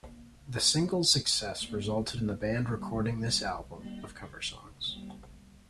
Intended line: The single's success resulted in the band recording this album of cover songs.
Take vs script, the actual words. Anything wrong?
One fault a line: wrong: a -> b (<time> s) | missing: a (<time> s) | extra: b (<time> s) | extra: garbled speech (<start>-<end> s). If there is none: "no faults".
no faults